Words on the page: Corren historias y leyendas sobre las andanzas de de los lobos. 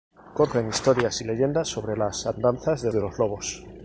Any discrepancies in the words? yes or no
no